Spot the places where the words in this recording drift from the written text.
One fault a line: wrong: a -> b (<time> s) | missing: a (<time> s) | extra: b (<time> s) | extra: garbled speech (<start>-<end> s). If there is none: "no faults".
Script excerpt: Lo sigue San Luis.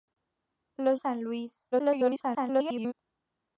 missing: sigue (0.9 s)
extra: garbled speech (1.7-2.9 s)